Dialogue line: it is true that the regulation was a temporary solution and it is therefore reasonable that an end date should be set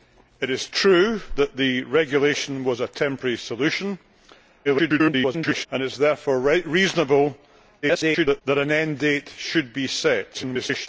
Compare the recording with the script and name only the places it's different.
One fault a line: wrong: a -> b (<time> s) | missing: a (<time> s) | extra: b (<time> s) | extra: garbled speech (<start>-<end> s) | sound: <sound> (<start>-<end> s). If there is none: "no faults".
extra: garbled speech (4.6-5.7 s)
extra: garbled speech (7.8-8.4 s)
extra: garbled speech (10.3-10.9 s)